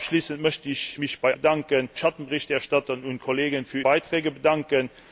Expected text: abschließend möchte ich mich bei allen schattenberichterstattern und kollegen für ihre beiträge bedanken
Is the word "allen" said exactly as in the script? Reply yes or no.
no